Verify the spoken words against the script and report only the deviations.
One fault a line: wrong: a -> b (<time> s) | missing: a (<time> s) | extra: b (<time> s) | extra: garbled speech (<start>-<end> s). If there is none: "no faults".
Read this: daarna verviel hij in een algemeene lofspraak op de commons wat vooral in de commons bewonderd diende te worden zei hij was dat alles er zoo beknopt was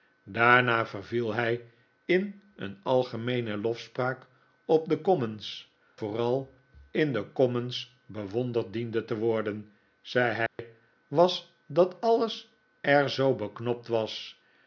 missing: wat (5.7 s)